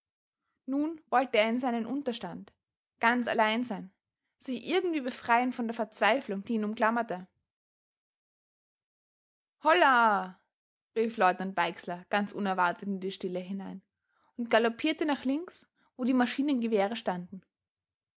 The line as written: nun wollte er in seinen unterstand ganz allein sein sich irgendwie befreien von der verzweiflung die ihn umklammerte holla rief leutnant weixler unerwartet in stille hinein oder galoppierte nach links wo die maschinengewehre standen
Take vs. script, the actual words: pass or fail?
fail